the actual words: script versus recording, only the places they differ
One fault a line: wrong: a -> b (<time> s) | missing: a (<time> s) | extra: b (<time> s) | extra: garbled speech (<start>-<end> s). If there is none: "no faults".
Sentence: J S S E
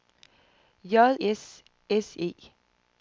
no faults